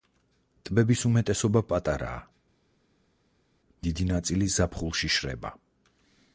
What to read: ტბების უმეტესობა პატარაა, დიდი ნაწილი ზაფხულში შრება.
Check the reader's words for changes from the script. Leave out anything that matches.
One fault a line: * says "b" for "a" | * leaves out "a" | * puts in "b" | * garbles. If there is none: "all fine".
all fine